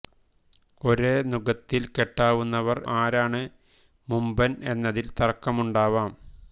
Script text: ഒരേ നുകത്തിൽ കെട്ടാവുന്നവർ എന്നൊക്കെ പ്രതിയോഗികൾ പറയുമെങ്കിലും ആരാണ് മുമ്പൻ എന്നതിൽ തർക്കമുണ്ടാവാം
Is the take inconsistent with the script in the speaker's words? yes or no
yes